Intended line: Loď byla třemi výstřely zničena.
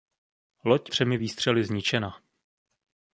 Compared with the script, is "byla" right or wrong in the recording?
wrong